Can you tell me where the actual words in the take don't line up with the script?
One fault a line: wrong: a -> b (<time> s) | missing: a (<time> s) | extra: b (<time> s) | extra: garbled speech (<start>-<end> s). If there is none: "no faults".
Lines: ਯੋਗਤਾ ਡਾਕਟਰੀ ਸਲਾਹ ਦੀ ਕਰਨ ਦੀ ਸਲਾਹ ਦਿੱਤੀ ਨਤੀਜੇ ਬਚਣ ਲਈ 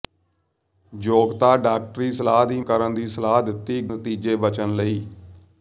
no faults